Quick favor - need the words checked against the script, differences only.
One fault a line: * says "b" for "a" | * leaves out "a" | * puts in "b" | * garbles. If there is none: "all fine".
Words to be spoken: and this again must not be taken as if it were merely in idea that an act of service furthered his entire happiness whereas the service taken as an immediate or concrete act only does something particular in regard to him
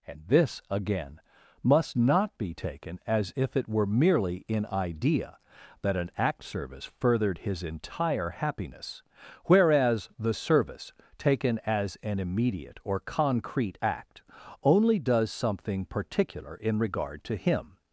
* leaves out "of"